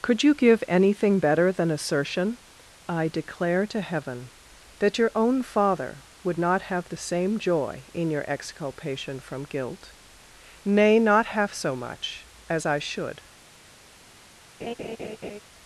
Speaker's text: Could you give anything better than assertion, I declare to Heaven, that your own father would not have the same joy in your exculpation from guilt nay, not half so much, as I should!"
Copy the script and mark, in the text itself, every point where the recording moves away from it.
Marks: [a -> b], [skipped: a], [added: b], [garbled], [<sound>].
Could you give anything better than assertion, I declare to Heaven, that your own father would not have the same joy in your exculpation from guilt nay, not half so much, as I should!" [laugh]